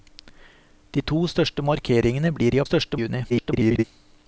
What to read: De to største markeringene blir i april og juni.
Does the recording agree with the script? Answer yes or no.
no